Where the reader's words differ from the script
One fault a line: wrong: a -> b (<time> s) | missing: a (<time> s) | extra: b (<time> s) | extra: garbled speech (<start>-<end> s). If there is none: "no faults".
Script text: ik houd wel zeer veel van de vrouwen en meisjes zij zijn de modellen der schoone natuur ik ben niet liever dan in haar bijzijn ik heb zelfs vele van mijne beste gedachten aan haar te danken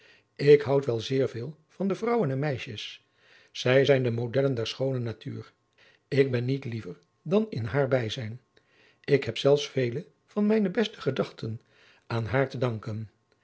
no faults